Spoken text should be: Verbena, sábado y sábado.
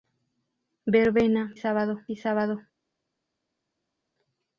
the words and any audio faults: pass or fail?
pass